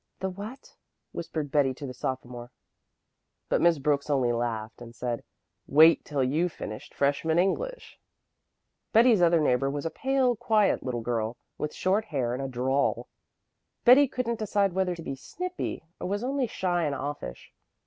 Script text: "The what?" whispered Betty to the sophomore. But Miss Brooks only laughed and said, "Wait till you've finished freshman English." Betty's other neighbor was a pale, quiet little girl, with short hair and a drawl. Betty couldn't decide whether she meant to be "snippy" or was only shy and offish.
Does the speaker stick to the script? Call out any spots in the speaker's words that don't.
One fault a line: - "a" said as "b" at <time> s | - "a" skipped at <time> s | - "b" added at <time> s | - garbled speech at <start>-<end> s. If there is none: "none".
- "she meant" skipped at 14.9 s